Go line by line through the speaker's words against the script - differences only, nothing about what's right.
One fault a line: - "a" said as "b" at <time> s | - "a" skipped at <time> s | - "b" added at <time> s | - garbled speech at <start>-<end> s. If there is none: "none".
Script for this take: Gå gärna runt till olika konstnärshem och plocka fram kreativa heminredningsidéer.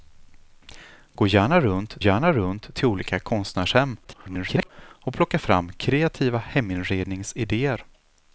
- "gärna runt" added at 2.0 s
- garbled speech at 4.0-4.7 s